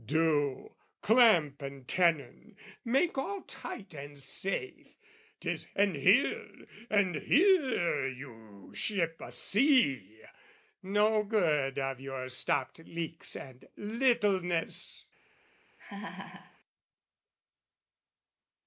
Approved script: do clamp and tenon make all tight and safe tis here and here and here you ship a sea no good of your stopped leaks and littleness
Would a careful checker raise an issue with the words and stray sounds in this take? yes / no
yes